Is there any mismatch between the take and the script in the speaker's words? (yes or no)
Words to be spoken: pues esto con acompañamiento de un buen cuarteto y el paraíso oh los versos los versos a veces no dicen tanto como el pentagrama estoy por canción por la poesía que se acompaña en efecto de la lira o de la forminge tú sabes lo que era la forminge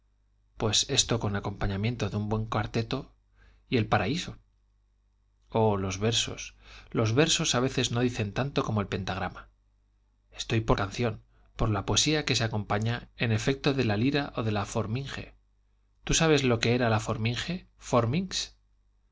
no